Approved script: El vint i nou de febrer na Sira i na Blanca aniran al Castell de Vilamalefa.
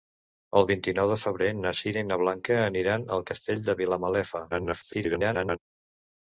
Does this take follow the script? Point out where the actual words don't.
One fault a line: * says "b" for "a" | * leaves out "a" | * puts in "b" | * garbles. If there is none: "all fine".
* garbles